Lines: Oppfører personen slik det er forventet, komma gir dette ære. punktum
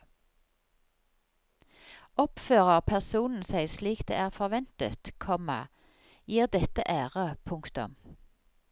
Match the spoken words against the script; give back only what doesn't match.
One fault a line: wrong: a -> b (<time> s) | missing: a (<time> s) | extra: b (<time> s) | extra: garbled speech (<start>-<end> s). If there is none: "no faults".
extra: seg (3.4 s)